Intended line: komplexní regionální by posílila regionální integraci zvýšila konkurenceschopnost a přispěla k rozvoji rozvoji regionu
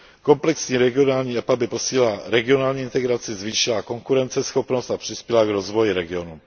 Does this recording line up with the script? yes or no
no